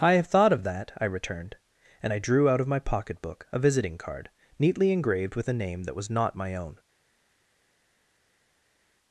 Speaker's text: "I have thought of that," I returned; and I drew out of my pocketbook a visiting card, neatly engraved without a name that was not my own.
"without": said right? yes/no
no